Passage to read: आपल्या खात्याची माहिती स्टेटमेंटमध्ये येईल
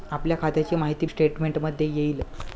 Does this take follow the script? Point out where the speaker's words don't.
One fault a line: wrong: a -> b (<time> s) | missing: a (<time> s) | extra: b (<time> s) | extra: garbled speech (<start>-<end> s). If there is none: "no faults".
no faults